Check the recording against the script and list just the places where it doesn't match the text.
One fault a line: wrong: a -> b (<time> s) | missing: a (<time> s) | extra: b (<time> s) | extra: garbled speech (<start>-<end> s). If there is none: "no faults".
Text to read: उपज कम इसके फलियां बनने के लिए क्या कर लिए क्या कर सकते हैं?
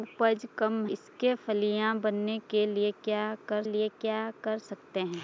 no faults